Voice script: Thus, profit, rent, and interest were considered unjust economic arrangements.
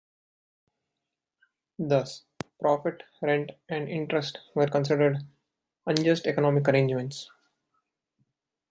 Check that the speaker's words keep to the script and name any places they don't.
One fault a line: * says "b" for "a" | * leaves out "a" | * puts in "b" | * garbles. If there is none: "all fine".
all fine